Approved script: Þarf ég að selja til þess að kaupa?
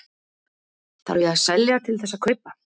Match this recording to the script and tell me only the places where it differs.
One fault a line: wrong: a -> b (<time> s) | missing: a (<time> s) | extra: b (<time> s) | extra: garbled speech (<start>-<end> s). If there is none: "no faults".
no faults